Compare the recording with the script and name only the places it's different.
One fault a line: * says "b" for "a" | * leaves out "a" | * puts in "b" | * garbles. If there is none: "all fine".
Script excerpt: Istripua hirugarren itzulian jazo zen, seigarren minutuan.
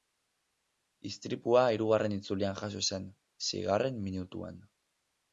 all fine